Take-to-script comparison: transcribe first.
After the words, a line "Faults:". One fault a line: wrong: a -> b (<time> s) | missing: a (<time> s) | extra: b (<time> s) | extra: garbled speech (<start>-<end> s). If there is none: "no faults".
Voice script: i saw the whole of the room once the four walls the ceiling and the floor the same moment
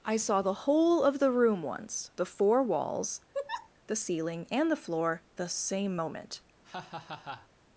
i saw the whole of the room once the four walls the ceiling and the floor the same moment
Faults:
no faults